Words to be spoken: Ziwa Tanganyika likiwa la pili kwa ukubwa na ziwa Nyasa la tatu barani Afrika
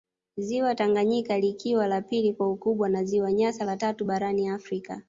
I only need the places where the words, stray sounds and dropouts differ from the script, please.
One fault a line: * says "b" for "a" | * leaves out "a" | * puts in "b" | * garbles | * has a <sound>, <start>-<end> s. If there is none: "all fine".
all fine